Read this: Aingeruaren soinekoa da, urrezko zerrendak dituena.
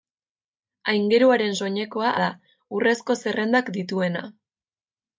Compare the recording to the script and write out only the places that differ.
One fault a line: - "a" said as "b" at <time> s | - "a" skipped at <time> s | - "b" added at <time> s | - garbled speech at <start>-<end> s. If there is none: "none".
none